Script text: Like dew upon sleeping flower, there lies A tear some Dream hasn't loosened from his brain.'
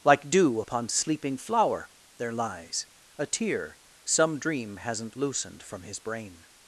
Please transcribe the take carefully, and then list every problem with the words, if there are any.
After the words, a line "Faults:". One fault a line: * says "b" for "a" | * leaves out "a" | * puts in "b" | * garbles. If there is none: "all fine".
Like dew upon sleeping flower, there lies A tear some Dream hasn't loosened from his brain.'
Faults:
all fine